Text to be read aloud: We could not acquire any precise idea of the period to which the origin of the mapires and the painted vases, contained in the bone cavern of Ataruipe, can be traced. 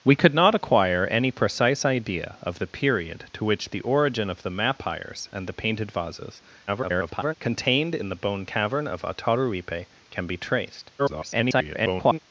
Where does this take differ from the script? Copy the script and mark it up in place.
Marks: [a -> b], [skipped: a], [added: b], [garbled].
We could not acquire any precise idea of the period to which the origin of the mapires and the painted vases, [garbled] contained in the bone cavern of Ataruipe, can be traced. [garbled]